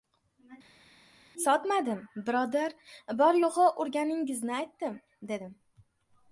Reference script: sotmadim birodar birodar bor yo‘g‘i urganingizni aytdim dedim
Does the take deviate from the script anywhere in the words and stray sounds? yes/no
yes